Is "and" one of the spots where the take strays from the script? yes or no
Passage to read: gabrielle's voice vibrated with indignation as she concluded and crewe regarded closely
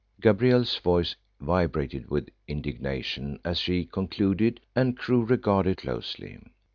no